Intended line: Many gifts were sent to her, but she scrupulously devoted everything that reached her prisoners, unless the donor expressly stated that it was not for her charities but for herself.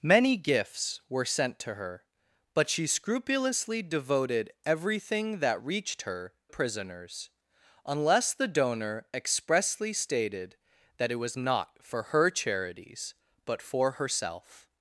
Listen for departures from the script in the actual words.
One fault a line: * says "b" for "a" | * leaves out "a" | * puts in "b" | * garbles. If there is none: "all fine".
all fine